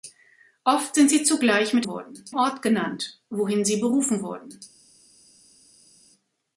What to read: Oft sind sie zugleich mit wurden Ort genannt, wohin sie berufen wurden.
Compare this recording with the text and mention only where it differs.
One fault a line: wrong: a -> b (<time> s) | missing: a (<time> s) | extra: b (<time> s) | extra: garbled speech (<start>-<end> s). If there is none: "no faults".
no faults